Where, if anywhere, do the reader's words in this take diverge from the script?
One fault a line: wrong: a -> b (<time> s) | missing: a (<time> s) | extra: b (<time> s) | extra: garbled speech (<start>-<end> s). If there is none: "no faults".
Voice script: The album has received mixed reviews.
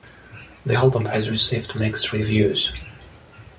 no faults